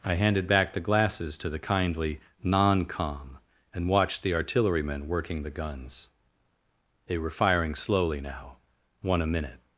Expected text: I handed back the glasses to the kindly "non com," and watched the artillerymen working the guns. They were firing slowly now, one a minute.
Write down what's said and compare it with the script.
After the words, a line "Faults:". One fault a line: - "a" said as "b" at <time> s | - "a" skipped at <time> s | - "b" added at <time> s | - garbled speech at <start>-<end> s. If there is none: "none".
I handed back the glasses to the kindly "non com," and watched the artillerymen working the guns. They were firing slowly now, one a minute.
Faults:
none